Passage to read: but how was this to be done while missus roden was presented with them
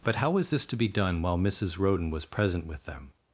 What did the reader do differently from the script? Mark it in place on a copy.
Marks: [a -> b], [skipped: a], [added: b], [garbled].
but how was this to be done while missus roden was [presented -> present] with them